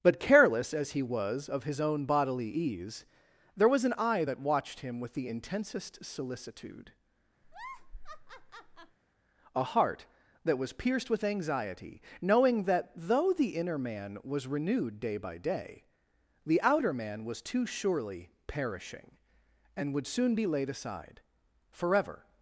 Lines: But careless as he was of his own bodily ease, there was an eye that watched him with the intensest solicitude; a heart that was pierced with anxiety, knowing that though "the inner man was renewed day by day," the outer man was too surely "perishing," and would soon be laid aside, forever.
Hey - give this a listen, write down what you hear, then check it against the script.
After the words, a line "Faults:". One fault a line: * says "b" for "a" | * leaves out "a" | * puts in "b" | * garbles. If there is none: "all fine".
But careless as he was of his own bodily ease, there was an eye that watched him with the intensest solicitude; a heart that was pierced with anxiety, knowing that though "the inner man was renewed day by day," the outer man was too surely "perishing," and would soon be laid aside, forever.
Faults:
all fine